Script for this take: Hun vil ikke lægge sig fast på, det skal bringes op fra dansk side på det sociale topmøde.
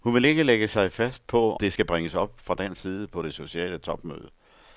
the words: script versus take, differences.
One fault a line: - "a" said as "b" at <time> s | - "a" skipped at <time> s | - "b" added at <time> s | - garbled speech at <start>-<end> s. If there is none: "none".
none